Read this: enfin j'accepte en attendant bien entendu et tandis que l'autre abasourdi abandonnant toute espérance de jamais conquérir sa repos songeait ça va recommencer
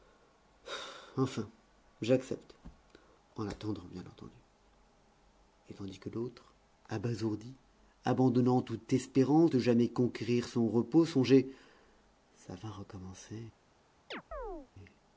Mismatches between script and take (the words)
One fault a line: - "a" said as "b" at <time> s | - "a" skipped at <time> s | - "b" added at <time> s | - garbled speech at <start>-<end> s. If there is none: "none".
- "sa" said as "son" at 10.5 s